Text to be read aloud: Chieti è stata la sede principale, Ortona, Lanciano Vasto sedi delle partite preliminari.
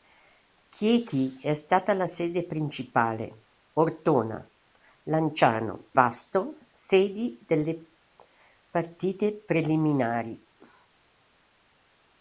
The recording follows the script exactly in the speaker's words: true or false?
true